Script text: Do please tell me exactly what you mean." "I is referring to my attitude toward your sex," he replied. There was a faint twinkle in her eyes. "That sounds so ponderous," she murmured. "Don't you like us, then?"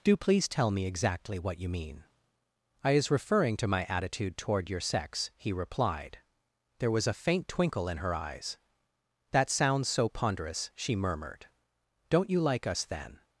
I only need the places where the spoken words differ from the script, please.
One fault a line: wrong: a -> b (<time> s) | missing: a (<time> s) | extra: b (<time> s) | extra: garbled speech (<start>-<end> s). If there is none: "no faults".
no faults